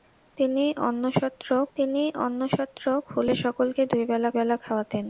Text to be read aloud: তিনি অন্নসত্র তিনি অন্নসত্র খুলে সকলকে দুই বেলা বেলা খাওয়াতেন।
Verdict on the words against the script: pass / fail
pass